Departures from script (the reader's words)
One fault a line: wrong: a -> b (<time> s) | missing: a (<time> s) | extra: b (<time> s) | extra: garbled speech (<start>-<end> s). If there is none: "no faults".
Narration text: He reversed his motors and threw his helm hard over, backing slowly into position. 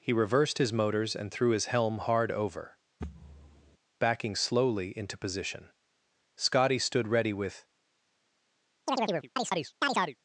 extra: Scotty stood ready with (6.4 s)